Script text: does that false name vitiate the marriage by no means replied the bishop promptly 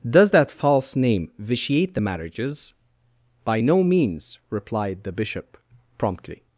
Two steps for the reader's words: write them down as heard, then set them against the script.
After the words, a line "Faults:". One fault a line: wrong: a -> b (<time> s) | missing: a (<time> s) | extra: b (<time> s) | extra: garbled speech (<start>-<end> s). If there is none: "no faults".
does that false name vitiate the marriages by no means replied the bishop promptly
Faults:
wrong: marriage -> marriages (2.0 s)